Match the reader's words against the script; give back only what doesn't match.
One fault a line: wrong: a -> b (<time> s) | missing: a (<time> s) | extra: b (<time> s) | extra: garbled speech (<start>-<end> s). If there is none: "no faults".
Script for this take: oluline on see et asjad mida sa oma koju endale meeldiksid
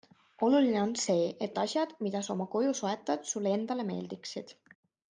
extra: soetad sulle (2.8 s)